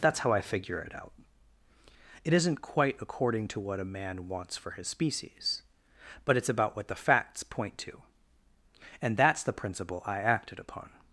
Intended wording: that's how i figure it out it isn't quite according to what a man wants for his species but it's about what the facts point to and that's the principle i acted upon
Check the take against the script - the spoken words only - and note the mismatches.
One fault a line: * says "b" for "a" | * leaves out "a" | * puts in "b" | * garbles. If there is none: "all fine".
all fine